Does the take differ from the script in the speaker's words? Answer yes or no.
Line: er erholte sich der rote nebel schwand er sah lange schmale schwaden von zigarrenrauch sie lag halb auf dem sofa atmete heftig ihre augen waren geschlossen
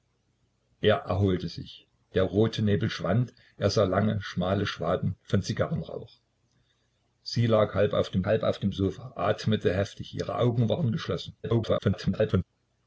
yes